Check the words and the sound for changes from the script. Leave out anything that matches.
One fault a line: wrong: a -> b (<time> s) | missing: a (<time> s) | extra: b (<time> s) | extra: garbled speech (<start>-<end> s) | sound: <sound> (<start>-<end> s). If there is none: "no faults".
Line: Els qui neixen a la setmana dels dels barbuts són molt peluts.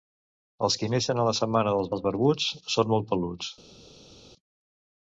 no faults